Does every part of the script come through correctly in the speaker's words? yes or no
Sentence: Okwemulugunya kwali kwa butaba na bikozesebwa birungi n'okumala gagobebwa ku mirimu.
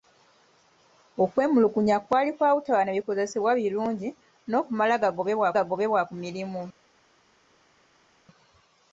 no